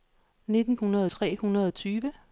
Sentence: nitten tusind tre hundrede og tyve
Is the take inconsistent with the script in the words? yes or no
yes